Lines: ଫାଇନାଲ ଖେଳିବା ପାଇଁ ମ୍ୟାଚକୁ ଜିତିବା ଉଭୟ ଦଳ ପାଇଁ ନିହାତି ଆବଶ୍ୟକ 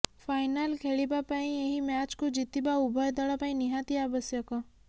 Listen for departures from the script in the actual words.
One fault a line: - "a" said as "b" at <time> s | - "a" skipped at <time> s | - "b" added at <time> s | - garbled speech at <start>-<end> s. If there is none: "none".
- "ଏହି" added at 1.6 s